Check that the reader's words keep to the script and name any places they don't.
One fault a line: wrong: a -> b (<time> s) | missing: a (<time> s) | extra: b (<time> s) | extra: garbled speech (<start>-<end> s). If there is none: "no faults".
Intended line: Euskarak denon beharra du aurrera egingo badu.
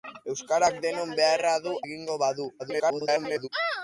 missing: aurrera (1.8 s)
extra: garbled speech (2.6-3.5 s)